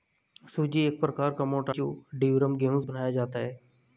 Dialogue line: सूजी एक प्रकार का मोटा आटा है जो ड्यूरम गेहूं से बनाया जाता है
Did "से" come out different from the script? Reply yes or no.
yes